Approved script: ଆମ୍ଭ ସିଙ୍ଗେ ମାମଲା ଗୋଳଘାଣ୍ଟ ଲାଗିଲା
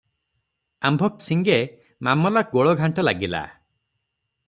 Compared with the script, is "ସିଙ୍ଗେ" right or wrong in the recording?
right